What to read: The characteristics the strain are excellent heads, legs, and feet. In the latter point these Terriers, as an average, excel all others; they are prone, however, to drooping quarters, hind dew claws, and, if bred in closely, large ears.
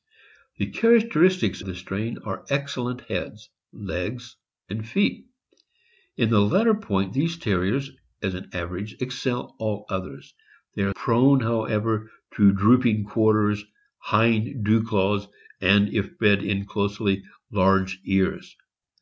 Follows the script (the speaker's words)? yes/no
yes